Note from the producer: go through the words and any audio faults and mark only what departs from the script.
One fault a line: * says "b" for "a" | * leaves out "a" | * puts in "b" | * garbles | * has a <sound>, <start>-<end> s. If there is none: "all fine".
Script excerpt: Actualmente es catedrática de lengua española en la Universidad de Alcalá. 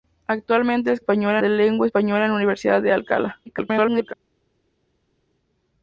* says "española" for "catedrática"
* garbles